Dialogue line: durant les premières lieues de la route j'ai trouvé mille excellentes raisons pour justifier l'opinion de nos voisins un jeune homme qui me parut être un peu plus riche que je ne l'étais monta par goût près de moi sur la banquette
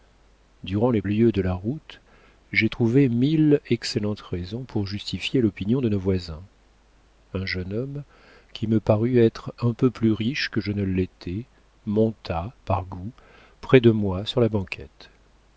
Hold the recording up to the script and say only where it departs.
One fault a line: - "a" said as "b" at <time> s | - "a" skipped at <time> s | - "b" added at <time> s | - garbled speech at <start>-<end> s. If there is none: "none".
- "premières" skipped at 1.0 s